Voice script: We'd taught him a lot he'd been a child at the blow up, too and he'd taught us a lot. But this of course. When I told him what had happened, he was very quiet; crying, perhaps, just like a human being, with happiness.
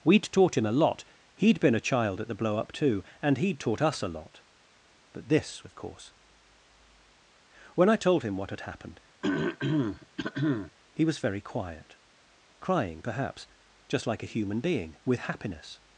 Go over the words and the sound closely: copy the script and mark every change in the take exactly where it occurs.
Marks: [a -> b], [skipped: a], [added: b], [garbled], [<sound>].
We'd taught him a lot he'd been a child at the blow up, too and he'd taught us a lot. But this of course. When I told him what had happened, [throat clearing] he was very quiet; crying, perhaps, just like a human being, with happiness.